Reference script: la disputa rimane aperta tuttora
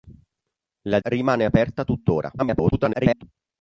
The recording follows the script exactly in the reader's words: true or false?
false